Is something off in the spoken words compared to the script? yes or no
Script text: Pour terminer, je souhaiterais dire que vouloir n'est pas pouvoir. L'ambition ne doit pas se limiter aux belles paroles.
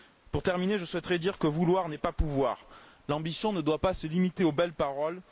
no